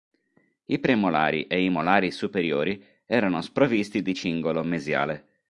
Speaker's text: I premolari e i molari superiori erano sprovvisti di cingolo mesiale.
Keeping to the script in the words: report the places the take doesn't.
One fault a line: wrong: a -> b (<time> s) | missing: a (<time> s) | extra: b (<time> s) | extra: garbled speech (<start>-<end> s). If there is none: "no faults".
no faults